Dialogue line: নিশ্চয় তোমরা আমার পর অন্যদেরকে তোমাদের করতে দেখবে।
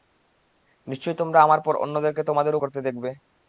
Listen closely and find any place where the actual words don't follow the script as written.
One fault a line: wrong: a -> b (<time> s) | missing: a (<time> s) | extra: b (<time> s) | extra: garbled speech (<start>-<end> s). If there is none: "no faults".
no faults